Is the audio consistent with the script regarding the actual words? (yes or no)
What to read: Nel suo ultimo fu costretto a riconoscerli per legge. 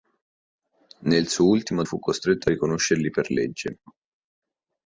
yes